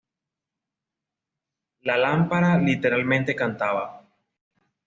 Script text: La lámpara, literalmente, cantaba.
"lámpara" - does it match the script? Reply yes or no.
yes